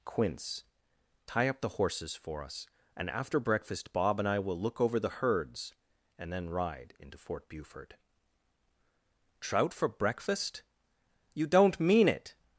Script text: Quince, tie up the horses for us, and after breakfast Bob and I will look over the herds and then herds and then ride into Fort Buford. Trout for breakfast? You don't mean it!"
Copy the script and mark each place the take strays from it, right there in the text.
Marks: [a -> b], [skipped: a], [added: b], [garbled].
Quince, tie up the horses for us, and after breakfast Bob and I will look over the herds and then [skipped: herds and then] ride into Fort Buford. Trout for breakfast? You don't mean it!"